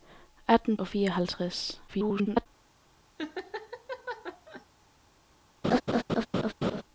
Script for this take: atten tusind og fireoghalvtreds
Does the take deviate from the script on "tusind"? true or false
true